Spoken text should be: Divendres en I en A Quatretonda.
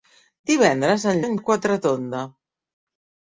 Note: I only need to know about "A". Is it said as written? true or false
true